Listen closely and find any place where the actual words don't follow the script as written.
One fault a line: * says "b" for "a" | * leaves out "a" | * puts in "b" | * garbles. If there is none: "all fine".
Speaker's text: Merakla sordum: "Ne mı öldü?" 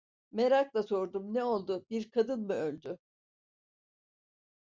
* puts in "oldu Bir kadın"